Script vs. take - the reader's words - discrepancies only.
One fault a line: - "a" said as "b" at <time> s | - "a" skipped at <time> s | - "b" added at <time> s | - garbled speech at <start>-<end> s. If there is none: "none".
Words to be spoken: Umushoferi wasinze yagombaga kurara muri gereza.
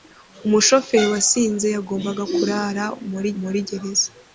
- "muri" added at 3.4 s